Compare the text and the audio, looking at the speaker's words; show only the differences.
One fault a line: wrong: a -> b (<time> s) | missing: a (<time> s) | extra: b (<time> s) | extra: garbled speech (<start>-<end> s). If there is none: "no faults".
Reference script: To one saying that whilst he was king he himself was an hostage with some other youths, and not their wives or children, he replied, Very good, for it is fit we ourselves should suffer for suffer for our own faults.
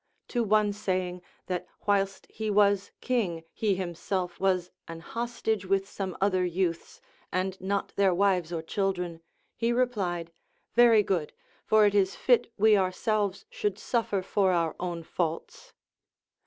missing: suffer for (14.5 s)